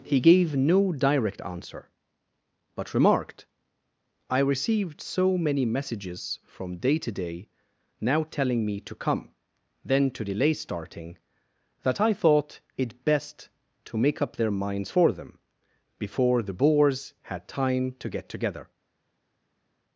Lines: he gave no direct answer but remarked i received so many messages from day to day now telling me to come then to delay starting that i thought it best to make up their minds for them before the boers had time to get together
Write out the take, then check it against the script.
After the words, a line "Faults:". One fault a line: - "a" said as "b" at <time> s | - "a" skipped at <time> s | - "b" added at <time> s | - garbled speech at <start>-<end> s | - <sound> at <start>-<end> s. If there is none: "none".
he gave no direct answer but remarked i received so many messages from day to day now telling me to come then to delay starting that i thought it best to make up their minds for them before the boers had time to get together
Faults:
none